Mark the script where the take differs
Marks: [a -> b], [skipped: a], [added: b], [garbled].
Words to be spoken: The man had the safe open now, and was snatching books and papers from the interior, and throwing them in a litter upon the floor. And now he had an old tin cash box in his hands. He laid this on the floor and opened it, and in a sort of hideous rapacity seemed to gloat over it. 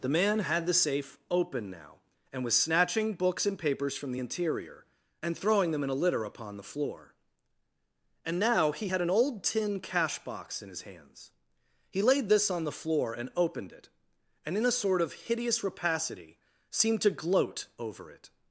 The man had the safe open now, and was snatching books and papers from the interior, and throwing them in a litter upon the floor. And now he had an old tin cash box in his hands. He laid this on the floor and opened it, and in a sort of hideous rapacity seemed to gloat over it.